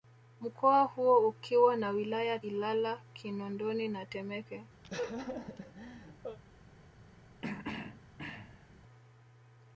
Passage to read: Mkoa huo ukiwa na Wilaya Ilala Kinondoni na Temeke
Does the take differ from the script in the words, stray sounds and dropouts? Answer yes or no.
yes